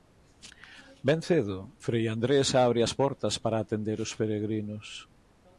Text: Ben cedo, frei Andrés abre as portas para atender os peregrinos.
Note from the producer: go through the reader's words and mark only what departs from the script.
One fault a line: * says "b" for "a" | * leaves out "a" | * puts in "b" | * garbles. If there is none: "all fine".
all fine